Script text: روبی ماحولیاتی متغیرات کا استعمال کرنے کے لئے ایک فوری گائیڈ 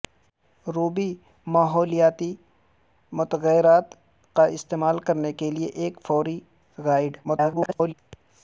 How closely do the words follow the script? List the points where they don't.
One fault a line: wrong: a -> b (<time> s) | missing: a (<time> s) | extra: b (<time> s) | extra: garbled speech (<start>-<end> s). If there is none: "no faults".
extra: garbled speech (7.2-7.9 s)